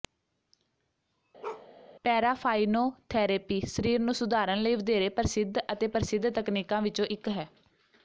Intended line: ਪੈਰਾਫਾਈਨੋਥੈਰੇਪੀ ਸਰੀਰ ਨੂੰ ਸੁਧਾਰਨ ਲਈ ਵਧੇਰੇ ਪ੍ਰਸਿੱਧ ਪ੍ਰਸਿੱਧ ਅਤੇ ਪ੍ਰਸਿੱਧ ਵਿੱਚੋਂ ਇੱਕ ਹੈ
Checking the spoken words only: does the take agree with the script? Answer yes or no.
no